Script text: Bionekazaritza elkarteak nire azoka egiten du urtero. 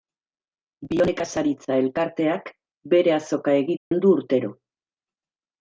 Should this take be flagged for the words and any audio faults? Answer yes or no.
yes